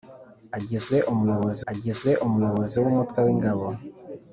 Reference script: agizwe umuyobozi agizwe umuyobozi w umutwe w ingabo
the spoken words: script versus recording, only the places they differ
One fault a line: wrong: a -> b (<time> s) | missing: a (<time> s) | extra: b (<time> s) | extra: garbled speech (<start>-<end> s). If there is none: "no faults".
no faults